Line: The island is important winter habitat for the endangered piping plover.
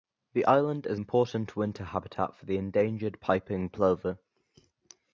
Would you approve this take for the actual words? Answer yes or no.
yes